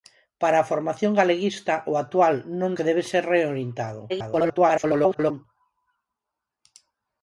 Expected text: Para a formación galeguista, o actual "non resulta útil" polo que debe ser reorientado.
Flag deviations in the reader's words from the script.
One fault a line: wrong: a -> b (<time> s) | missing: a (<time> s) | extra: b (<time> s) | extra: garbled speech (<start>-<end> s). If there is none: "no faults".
missing: resulta útil polo (2.7 s)
extra: garbled speech (4.1-5.5 s)